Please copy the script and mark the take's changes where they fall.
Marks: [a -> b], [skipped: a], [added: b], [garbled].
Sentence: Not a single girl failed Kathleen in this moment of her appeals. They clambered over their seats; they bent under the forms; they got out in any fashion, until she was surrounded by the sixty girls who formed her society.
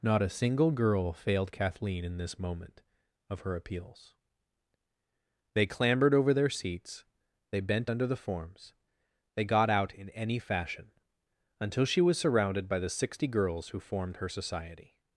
Not a single girl failed Kathleen in this moment of her appeals. They clambered over their seats; they bent under the forms; they got out in any fashion, until she was surrounded by the sixty girls who formed her society.